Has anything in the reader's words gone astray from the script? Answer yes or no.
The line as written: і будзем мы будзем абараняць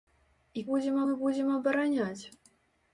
no